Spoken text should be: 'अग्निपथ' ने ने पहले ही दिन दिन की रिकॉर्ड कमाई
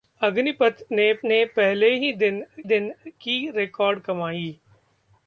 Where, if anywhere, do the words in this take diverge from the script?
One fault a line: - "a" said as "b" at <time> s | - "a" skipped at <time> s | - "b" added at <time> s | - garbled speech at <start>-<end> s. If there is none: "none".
none